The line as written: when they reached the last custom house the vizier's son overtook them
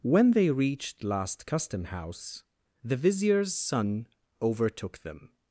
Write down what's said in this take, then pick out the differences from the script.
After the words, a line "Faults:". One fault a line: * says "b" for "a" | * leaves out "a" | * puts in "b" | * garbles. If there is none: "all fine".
when they reached last custom house the vizier's son overtook them
Faults:
* leaves out "the"